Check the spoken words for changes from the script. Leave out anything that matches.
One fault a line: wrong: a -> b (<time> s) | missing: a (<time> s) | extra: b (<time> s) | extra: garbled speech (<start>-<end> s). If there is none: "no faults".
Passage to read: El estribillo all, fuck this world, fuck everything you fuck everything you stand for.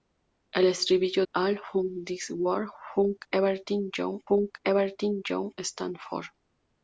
no faults